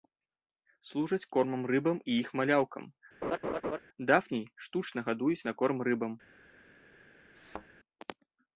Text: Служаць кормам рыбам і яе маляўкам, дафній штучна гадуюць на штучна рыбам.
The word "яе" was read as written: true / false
false